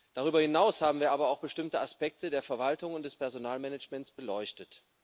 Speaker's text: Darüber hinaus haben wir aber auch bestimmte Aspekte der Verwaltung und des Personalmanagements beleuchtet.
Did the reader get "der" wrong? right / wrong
right